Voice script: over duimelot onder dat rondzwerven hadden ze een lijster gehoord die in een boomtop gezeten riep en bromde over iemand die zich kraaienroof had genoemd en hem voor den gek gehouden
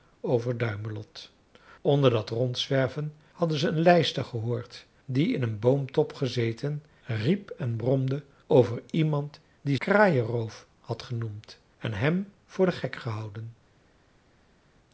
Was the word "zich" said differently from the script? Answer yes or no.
yes